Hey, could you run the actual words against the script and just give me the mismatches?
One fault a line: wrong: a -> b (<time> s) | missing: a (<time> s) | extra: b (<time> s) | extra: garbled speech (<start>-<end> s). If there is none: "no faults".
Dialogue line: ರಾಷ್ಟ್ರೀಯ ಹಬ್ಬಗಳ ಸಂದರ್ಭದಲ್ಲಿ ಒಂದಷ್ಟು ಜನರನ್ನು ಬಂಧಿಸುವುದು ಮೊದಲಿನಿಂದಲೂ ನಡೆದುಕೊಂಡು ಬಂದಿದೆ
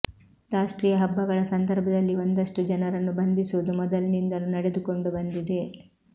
no faults